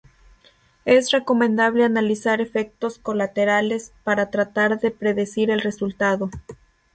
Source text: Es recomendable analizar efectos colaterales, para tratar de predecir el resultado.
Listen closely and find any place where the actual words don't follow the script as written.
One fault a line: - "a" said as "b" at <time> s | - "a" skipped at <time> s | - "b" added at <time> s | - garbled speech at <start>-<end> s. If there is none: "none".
none